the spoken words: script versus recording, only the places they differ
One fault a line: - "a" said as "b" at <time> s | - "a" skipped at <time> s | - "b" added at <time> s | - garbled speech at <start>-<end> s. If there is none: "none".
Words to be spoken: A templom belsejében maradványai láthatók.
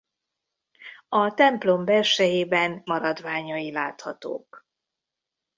none